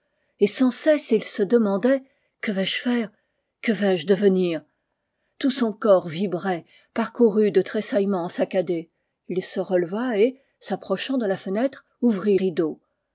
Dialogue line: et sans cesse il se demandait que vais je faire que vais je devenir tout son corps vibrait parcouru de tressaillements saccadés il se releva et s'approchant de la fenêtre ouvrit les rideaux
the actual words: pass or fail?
fail